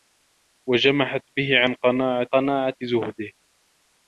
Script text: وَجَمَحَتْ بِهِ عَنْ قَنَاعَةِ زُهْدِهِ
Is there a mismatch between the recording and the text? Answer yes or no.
yes